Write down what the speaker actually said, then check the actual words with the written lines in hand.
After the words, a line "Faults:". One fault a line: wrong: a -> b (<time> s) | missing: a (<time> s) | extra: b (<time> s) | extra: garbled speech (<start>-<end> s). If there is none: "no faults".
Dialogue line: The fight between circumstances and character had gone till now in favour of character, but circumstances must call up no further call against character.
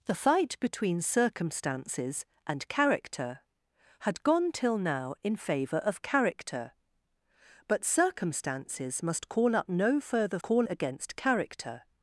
The fight between circumstances and character had gone till now in favour of character, but circumstances must call up no further call against character.
Faults:
no faults